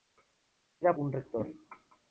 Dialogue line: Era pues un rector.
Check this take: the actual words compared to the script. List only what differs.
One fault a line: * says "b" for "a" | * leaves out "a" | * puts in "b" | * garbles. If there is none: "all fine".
* leaves out "pues"